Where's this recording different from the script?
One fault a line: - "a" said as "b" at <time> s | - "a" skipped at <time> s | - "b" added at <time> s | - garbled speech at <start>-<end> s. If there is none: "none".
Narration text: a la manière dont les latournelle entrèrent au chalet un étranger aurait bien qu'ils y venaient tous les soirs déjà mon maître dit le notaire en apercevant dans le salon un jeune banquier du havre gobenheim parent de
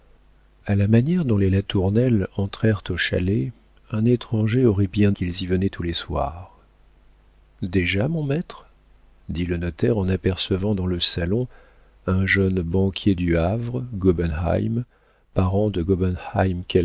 none